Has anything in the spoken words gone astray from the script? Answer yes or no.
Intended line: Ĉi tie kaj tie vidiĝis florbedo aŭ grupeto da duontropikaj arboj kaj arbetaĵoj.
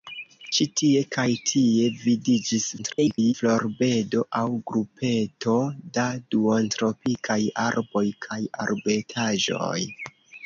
yes